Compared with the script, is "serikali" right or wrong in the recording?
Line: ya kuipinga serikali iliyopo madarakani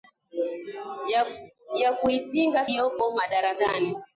wrong